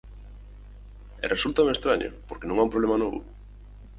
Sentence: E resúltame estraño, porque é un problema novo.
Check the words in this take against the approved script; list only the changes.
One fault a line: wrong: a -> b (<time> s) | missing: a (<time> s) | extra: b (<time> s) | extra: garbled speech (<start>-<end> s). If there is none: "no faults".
extra: non (2.5 s)